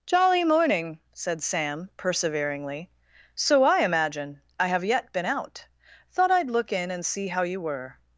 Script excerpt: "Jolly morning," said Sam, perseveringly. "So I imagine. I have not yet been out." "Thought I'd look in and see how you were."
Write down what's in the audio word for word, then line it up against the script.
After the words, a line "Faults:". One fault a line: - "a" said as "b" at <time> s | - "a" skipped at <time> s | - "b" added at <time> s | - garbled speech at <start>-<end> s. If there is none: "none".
"Jolly morning," said Sam, perseveringly. "So I imagine. I have yet been out." "Thought I'd look in and see how you were."
Faults:
- "not" skipped at 4.8 s